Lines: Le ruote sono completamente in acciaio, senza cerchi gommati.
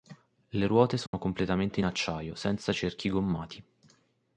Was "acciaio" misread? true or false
false